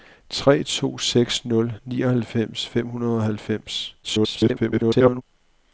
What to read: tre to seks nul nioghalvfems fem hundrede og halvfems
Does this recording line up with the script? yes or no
no